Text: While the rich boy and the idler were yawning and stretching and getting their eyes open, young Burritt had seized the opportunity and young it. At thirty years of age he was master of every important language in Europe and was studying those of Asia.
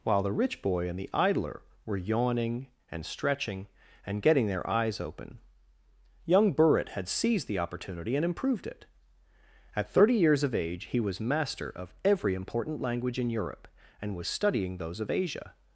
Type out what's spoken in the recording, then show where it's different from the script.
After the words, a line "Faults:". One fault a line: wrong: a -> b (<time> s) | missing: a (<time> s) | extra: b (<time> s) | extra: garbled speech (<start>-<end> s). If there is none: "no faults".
While the rich boy and the idler were yawning and stretching and getting their eyes open, young Burritt had seized the opportunity and improved it. At thirty years of age he was master of every important language in Europe and was studying those of Asia.
Faults:
wrong: young -> improved (8.2 s)